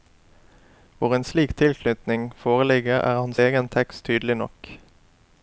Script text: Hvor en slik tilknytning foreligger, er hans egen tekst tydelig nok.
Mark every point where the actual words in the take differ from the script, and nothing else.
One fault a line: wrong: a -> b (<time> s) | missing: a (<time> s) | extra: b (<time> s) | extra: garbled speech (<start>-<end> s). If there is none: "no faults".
no faults